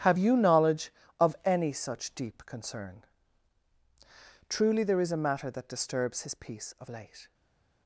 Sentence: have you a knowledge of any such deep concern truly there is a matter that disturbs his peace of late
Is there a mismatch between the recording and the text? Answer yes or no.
yes